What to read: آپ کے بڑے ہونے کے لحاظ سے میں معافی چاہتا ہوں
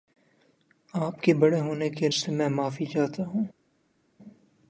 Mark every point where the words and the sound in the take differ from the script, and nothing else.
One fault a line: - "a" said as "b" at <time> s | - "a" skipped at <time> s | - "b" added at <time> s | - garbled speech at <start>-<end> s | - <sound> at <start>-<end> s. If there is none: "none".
- "لحاظ" skipped at 2.1 s